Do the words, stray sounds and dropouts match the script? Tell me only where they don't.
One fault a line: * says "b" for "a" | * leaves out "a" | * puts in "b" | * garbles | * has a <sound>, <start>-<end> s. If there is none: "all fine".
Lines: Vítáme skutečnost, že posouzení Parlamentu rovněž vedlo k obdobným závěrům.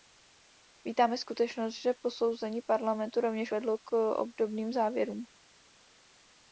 all fine